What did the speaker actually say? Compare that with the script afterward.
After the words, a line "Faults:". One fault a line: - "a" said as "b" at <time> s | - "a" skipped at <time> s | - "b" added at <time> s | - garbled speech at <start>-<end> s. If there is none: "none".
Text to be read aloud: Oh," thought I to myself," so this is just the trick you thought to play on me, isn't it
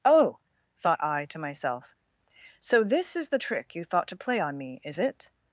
Oh," thought I to myself," so this is the trick you thought to play on me, is it
Faults:
- "just" skipped at 3.3 s
- "isn't" said as "is" at 4.8 s